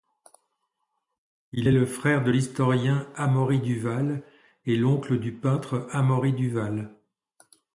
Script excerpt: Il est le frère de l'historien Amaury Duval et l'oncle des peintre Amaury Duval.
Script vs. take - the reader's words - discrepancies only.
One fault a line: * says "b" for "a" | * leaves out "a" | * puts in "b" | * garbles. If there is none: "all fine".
* says "du" for "des"